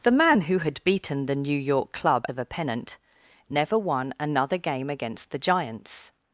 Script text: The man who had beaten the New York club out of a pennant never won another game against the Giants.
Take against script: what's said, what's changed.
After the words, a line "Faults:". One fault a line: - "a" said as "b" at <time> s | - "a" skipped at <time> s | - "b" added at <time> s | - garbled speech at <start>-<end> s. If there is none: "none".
The man who had beaten the New York club of a pennant never won another game against the Giants.
Faults:
- "out" skipped at 2.2 s